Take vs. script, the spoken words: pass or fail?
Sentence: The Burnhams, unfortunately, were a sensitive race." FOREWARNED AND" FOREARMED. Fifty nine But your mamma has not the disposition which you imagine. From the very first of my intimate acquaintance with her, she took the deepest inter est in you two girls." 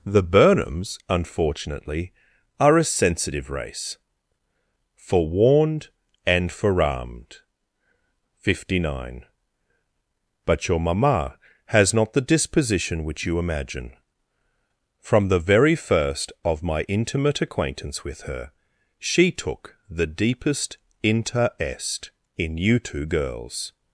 fail